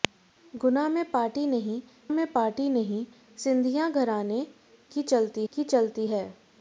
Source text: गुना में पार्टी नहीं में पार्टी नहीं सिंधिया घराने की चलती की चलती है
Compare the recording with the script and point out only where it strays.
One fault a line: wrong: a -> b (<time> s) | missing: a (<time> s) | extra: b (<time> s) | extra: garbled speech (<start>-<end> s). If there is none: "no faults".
no faults